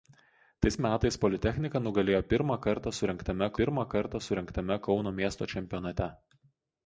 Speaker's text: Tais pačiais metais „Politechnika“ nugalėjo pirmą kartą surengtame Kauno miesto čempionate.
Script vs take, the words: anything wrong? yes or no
yes